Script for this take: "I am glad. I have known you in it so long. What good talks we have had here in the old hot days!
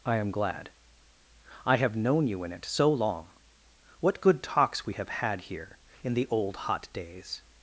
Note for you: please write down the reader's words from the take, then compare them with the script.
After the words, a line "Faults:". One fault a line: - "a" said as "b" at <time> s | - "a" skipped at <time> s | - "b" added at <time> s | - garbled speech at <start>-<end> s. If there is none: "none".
"I am glad. I have known you in it so long. What good talks we have had here in the old hot days!
Faults:
none